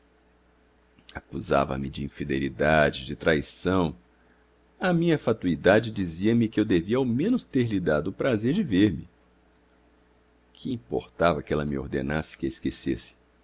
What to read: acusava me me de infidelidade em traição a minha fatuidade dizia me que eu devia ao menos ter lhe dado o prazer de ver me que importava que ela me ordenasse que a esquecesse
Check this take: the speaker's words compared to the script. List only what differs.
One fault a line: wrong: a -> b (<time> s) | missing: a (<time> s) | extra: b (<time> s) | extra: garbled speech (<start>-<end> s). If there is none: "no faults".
missing: me (1.9 s)
wrong: em -> de (3.0 s)